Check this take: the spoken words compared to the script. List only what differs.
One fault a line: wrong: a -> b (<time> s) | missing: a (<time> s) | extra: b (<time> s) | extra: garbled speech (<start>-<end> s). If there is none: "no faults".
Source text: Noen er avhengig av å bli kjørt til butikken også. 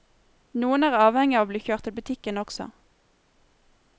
no faults